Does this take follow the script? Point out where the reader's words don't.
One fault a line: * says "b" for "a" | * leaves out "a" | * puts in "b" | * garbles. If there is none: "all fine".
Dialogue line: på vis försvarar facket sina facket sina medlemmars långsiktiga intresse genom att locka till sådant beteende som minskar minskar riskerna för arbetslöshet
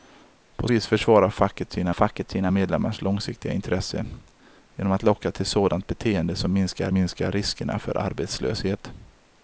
all fine